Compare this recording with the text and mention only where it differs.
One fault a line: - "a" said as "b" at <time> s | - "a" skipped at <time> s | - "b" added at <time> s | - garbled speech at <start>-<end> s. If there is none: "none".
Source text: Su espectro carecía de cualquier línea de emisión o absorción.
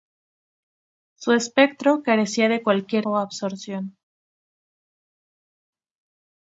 - "línea de emisión" skipped at 3.1 s